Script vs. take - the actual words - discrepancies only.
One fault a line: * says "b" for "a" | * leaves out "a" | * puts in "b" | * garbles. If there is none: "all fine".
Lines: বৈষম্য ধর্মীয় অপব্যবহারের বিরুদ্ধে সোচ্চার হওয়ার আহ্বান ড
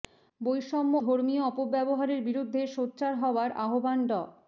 all fine